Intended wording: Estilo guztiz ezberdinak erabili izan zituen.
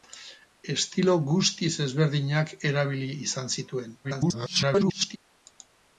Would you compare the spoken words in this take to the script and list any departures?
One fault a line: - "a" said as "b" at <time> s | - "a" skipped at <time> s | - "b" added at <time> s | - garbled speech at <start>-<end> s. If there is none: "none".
- garbled speech at 4.0-5.2 s